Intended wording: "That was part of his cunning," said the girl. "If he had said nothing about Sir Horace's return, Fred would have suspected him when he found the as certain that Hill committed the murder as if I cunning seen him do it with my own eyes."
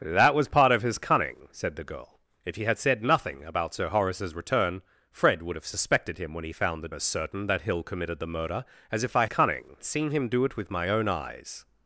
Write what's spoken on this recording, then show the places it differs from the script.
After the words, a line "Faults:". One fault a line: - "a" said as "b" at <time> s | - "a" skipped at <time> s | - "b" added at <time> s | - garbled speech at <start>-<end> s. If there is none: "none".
"That was part of his cunning," said the girl. "If he had said nothing about Sir Horace's return, Fred would have suspected him when he found the as certain that Hill committed the murder as if I cunning seen him do it with my own eyes."
Faults:
none